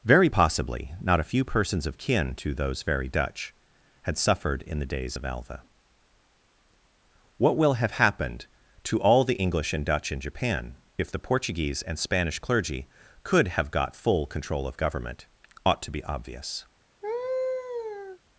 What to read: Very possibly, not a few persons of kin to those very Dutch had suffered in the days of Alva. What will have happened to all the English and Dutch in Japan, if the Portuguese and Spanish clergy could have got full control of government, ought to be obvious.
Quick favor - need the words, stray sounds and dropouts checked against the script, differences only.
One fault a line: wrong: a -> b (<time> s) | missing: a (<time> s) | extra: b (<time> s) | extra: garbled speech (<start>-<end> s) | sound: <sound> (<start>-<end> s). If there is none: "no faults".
sound: laugh (17.0-18.2 s)